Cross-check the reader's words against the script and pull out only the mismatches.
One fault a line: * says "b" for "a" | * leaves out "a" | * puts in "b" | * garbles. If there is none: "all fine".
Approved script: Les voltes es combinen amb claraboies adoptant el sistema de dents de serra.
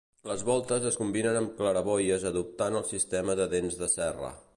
all fine